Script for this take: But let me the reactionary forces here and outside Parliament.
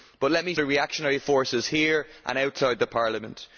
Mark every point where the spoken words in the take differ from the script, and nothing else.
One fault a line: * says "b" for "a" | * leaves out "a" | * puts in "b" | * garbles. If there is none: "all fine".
all fine